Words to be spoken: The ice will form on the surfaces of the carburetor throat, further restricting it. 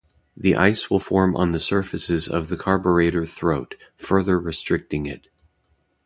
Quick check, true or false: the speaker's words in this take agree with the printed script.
true